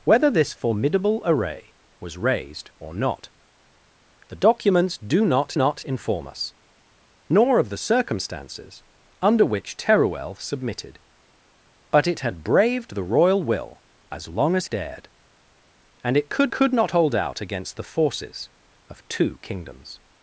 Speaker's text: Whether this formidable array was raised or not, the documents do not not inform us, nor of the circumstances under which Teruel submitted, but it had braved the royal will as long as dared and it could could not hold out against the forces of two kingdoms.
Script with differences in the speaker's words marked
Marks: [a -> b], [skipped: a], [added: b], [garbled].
Whether this formidable array was raised or not, the documents do not not inform us, nor of the circumstances under which Teruel submitted, but it had braved the royal will as long as dared and it could could not hold out against the forces of two kingdoms.